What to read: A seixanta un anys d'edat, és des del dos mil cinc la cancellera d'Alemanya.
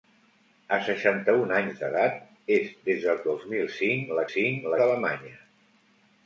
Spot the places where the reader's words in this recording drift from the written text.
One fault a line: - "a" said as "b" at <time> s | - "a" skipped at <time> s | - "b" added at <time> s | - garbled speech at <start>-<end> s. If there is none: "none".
- "cancellera" said as "cinc" at 4.3 s